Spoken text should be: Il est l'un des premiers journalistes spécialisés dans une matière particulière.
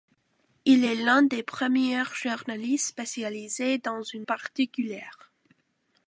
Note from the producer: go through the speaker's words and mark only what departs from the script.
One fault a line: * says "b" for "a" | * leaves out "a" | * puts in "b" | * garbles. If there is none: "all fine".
* leaves out "matière"